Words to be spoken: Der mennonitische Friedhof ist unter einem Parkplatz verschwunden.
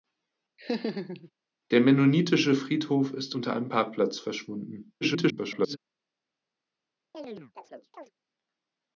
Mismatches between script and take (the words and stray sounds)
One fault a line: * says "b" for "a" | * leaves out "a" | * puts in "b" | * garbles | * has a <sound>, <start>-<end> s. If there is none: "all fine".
* has a laugh, 0.6-1.3 s
* garbles
* has a chirp, 7.1-8.1 s